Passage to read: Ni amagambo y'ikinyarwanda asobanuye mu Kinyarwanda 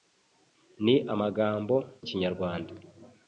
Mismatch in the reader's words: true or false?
true